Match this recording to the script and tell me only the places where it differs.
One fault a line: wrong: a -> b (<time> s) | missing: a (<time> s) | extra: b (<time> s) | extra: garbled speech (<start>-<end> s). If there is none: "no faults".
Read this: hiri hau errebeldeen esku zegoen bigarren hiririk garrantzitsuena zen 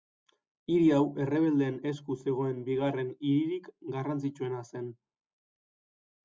no faults